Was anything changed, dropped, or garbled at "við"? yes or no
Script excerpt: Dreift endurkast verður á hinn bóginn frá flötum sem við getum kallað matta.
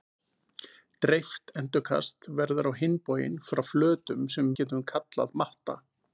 yes